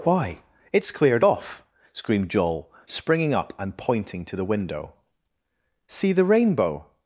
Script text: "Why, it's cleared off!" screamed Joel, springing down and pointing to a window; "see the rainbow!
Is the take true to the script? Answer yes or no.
no